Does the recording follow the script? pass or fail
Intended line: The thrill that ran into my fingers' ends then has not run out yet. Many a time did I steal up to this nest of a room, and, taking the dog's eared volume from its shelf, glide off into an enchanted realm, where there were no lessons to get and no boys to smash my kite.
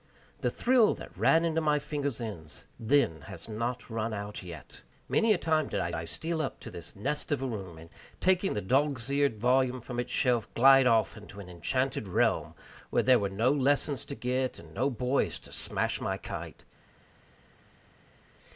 fail